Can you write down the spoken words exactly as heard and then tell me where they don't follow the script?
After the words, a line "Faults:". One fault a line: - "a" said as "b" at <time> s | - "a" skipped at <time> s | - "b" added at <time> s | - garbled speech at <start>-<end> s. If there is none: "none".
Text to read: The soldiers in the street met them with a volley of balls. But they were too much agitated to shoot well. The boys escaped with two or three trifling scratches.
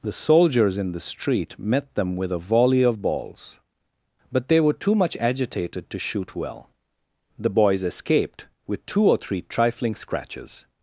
The soldiers in the street met them with a volley of balls. But they were too much agitated to shoot well. The boys escaped with two or three trifling scratches.
Faults:
none